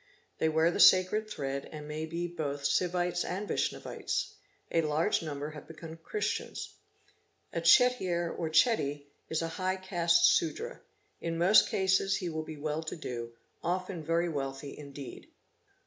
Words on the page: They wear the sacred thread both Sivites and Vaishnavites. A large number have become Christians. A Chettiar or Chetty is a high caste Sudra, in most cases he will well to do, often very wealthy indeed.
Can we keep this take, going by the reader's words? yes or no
no